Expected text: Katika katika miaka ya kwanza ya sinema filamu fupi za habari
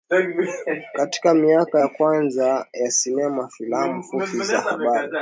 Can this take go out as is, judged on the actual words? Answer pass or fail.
fail